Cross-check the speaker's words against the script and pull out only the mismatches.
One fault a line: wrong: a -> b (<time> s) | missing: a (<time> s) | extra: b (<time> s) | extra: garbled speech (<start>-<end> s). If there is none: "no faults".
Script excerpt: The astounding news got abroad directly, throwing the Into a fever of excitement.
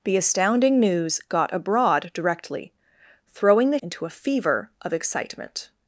no faults